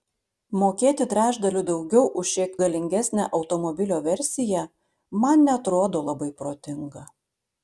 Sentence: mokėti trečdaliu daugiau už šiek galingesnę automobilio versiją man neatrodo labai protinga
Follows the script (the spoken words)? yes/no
yes